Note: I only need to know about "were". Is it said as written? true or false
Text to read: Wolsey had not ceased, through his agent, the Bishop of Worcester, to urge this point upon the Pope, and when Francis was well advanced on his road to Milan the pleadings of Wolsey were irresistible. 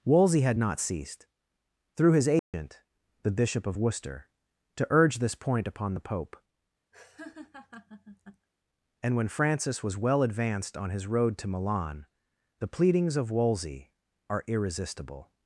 false